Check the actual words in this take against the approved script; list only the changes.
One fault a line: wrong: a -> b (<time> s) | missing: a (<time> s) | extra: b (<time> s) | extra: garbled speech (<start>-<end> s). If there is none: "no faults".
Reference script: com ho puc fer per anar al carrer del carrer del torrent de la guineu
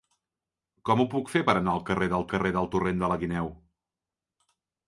no faults